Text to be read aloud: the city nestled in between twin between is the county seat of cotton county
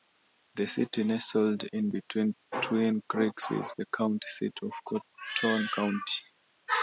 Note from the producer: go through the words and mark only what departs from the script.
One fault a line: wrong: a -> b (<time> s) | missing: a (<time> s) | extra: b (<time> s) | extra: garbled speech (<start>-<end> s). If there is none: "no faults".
wrong: between -> creeks (3.1 s)